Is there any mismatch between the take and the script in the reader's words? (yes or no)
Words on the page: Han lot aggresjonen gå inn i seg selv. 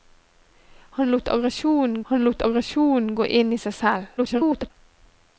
yes